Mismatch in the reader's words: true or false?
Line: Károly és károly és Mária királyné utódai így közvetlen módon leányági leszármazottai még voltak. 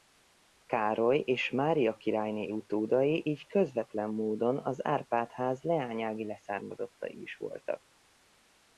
true